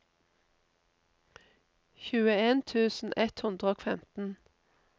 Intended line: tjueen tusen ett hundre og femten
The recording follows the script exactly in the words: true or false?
true